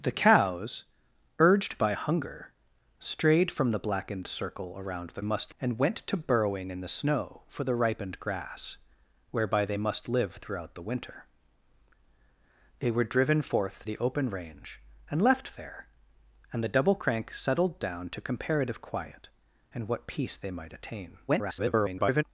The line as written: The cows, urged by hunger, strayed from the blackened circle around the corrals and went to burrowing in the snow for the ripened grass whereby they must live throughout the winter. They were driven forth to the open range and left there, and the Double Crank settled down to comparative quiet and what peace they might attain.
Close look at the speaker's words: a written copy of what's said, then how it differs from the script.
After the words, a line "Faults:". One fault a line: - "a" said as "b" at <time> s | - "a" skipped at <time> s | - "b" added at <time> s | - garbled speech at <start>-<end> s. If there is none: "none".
The cows, urged by hunger, strayed from the blackened circle around the must and went to burrowing in the snow for the ripened grass whereby they must live throughout the winter. They were driven forth the open range and left there, and the Double Crank settled down to comparative quiet and what peace they might attain. [garbled]
Faults:
- "corrals" said as "must" at 5.2 s
- "to" skipped at 13.9 s
- garbled speech at 21.3-22.2 s